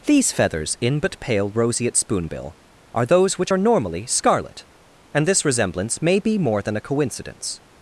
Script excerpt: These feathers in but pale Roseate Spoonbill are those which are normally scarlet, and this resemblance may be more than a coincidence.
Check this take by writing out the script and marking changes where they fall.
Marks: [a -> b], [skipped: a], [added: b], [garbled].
These feathers in but pale Roseate Spoonbill are those which are normally scarlet, and this resemblance may be more than a coincidence.